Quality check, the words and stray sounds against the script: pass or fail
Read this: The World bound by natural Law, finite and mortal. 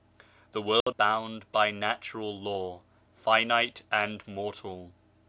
fail